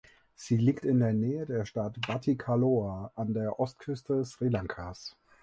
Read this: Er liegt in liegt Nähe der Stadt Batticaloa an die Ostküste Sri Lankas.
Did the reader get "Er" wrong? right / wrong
wrong